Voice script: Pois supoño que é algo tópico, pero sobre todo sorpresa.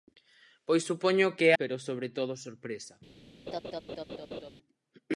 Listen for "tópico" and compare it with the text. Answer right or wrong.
wrong